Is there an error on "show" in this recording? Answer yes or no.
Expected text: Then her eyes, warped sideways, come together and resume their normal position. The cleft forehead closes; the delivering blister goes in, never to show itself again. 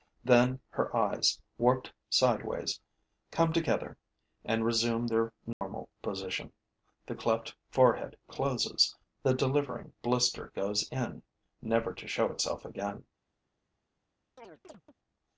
no